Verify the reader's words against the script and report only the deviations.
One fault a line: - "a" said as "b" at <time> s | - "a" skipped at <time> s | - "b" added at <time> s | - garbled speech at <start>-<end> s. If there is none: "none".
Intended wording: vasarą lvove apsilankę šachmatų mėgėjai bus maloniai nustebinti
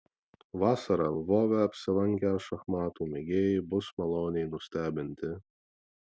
none